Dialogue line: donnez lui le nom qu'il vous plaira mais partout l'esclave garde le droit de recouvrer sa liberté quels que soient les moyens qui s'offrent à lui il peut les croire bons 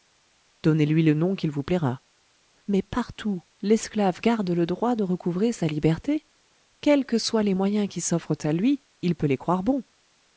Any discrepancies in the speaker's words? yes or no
no